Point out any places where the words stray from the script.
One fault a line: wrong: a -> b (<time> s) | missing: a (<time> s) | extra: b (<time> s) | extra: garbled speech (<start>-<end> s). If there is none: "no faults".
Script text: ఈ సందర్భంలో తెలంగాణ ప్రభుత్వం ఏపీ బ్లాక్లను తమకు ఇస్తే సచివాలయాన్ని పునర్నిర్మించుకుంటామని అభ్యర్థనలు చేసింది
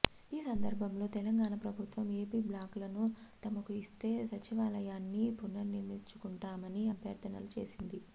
no faults